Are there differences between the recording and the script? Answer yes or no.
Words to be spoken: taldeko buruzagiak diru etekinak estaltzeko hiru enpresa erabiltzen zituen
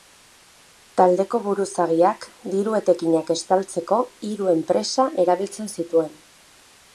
no